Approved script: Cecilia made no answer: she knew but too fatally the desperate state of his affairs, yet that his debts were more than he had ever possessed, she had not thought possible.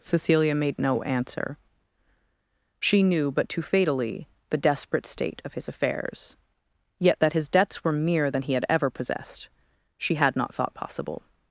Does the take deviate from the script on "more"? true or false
true